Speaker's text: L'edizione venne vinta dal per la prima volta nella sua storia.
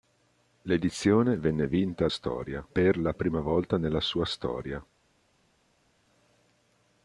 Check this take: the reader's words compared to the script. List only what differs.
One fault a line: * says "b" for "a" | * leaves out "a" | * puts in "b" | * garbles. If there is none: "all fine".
* says "storia" for "dal"